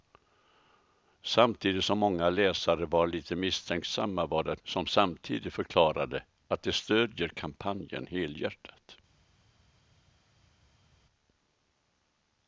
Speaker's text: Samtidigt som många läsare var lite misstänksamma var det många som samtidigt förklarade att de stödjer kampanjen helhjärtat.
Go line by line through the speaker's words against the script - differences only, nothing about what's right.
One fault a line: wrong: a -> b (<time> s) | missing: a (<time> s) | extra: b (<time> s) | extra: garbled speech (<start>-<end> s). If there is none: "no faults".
missing: många (4.6 s)